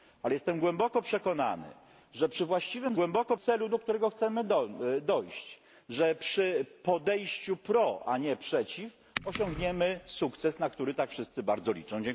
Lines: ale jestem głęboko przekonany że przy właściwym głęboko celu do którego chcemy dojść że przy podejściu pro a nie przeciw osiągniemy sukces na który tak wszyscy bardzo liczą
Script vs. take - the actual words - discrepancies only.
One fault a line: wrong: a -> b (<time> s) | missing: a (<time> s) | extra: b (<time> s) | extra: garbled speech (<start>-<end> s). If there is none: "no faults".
no faults